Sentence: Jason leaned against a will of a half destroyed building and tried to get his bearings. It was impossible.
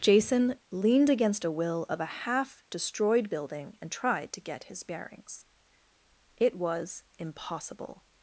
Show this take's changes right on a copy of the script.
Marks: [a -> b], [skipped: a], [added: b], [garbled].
Jason leaned against a will of a half destroyed building and tried to get his bearings. It was impossible.